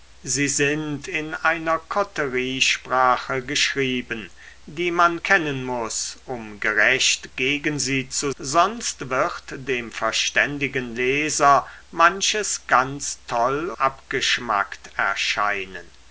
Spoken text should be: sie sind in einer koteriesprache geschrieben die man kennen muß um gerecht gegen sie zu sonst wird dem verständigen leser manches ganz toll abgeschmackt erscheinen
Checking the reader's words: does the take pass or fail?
pass